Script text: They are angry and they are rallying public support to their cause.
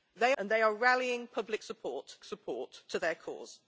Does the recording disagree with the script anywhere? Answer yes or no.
yes